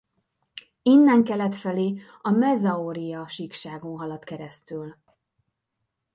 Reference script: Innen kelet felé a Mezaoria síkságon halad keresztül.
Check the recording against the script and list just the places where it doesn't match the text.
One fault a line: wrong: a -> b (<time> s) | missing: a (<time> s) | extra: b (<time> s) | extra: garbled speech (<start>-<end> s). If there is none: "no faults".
no faults